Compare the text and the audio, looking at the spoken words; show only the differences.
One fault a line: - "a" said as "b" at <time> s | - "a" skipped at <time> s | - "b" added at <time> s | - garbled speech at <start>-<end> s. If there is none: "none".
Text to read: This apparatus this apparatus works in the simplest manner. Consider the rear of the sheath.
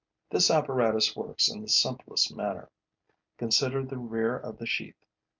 - "this apparatus" skipped at 1.1 s